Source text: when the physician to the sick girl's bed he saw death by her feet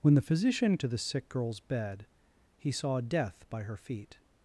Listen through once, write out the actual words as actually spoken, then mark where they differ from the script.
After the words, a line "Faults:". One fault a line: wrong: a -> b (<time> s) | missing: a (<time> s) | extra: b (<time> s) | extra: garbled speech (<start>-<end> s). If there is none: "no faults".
when the physician to the sick girl's bed he saw death by her feet
Faults:
no faults